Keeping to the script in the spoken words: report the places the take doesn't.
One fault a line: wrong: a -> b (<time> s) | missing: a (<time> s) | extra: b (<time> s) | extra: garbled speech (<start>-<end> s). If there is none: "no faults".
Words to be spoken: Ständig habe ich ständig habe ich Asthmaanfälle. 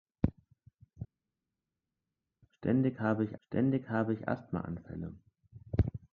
no faults